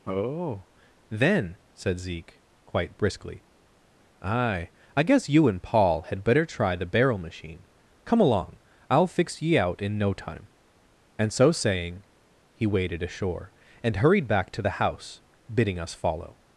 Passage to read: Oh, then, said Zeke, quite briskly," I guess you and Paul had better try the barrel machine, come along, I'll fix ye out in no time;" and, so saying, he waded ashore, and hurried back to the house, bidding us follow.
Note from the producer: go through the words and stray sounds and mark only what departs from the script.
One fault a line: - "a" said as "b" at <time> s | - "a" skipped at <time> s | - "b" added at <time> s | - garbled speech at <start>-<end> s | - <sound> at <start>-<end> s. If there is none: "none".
- "aye" added at 4.2 s